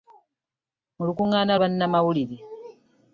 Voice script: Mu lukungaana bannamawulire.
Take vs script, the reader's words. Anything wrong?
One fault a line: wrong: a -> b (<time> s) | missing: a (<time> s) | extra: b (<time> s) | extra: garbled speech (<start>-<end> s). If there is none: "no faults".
no faults